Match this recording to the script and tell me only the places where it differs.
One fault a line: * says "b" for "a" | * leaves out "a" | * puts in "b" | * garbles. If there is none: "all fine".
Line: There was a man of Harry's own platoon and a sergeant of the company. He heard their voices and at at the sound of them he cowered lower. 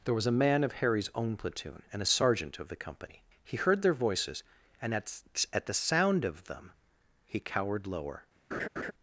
all fine